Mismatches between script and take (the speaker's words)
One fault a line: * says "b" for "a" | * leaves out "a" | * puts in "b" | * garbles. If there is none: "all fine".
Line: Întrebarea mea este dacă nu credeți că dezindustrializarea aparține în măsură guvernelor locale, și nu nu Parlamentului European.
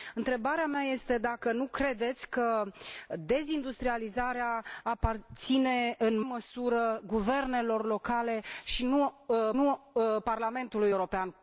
all fine